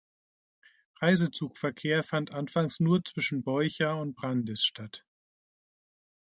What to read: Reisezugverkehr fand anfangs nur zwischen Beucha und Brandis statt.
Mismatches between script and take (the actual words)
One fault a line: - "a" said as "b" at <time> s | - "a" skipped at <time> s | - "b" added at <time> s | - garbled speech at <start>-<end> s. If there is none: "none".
none